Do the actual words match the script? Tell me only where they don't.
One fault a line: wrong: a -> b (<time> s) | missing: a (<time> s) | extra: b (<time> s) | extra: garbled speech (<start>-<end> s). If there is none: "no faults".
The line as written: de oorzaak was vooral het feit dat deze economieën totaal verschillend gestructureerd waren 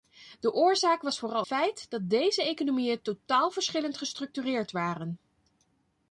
missing: het (1.4 s)